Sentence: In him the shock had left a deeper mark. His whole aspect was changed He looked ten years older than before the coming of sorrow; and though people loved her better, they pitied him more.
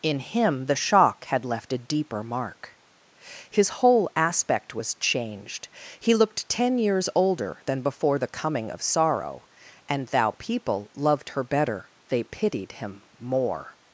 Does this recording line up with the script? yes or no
no